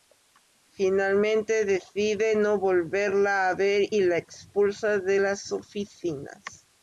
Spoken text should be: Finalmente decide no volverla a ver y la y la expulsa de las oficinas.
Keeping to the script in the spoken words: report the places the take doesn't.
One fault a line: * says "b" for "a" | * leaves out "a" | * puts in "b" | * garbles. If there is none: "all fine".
* leaves out "y la"